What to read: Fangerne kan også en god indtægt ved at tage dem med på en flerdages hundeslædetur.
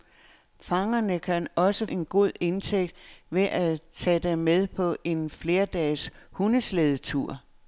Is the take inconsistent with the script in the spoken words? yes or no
no